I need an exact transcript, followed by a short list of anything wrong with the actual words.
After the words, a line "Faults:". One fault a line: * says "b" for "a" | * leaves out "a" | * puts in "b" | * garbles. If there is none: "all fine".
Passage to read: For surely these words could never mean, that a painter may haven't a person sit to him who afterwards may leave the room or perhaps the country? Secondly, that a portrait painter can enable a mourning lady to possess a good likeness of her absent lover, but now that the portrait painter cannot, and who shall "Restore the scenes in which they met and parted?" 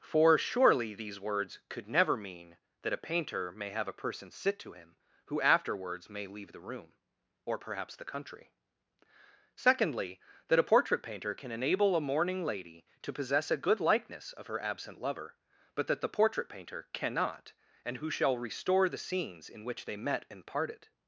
For surely these words could never mean, that a painter may have a person sit to him who afterwards may leave the room or perhaps the country? Secondly, that a portrait painter can enable a mourning lady to possess a good likeness of her absent lover, but that the portrait painter cannot, and who shall "Restore the scenes in which they met and parted?"
Faults:
* says "have" for "haven't"
* leaves out "now"